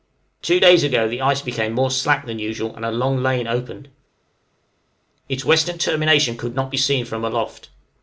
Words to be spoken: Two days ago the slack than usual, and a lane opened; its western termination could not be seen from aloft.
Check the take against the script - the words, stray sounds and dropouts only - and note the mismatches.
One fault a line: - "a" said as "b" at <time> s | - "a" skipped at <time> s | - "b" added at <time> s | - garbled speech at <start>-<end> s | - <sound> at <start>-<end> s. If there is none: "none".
- "ice became more" added at 1.2 s
- "long" added at 2.9 s